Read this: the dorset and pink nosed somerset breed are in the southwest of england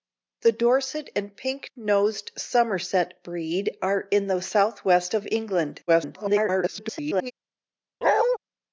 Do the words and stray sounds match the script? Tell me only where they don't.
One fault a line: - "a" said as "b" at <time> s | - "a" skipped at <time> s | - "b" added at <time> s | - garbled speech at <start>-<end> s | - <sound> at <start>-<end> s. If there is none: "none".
- garbled speech at 5.9-7.3 s
- bark at 8.0-8.4 s